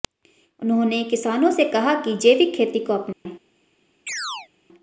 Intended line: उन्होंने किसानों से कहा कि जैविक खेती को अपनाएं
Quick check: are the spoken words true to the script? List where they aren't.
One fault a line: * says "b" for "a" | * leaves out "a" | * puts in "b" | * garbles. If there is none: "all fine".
all fine